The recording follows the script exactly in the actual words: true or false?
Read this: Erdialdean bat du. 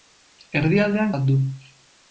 true